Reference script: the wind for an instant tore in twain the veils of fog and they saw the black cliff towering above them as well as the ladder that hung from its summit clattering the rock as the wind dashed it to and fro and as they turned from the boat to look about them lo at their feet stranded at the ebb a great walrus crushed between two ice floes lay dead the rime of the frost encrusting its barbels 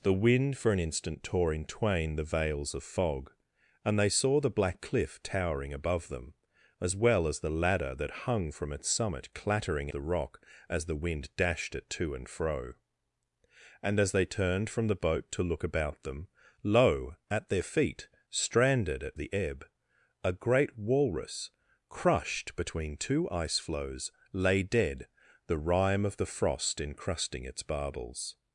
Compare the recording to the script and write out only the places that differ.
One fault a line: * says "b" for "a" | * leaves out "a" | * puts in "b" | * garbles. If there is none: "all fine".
all fine